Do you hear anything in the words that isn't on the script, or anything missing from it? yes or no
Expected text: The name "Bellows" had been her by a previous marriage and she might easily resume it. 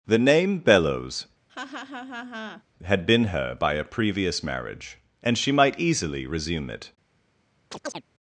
no